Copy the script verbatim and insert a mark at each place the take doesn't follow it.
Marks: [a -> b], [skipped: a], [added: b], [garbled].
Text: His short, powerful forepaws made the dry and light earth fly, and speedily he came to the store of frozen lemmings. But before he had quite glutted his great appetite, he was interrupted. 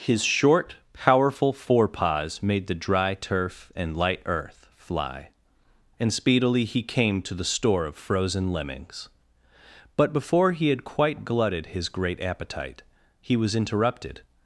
His short, powerful forepaws made the dry [added: turf] and light earth fly, and speedily he came to the store of frozen lemmings. But before he had quite glutted his great appetite, he was interrupted.